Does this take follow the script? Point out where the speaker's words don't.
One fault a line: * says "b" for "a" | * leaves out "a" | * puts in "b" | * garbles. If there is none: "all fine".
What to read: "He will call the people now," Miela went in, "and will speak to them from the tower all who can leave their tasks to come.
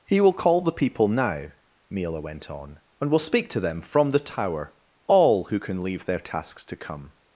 * says "on" for "in"